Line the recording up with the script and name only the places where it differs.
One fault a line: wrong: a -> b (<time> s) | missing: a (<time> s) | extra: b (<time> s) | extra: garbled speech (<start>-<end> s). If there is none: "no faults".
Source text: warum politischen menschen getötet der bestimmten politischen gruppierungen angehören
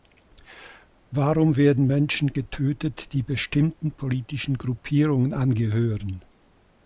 wrong: politischen -> werden (1.6 s)
wrong: der -> die (3.1 s)